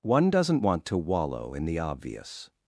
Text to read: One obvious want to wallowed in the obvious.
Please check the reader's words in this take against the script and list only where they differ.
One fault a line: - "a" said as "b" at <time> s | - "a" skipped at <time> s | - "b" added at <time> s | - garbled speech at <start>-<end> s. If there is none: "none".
- "obvious" said as "doesn't" at 0.3 s
- "wallowed" said as "wallow" at 1.0 s